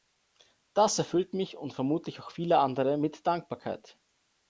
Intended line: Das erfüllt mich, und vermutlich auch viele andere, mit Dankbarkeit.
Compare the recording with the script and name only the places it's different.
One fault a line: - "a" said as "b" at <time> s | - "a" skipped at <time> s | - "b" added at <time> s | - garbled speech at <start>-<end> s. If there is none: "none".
none